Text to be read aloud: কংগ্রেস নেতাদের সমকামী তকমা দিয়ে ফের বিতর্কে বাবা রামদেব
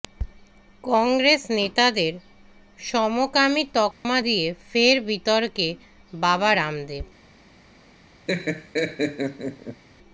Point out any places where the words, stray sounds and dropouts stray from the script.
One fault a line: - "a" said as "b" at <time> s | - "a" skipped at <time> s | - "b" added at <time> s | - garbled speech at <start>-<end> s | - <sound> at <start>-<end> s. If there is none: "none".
- dropout at 3.9-4.0 s
- laugh at 8.3-9.8 s